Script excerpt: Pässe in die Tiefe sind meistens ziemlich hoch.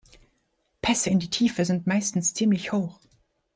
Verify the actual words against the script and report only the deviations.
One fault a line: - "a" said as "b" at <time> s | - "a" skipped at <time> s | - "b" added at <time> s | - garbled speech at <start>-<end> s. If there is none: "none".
none